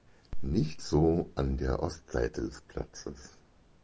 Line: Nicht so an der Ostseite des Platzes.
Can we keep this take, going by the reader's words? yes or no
yes